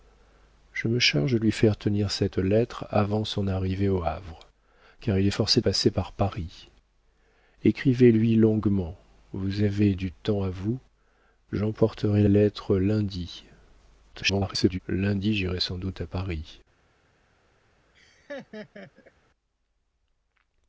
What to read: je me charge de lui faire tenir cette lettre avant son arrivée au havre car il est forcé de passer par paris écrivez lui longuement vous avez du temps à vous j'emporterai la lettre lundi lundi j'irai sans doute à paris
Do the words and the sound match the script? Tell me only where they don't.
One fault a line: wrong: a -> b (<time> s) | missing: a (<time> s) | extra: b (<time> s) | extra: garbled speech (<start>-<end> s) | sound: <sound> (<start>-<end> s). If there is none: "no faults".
missing: de (5.6 s)
missing: la (12.2 s)
extra: garbled speech (14.1-14.8 s)
sound: laugh (17.9-19.1 s)